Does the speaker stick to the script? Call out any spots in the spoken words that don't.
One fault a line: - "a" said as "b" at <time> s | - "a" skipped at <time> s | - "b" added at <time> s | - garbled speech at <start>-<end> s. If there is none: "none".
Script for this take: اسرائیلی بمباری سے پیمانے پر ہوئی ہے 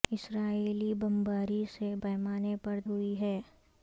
none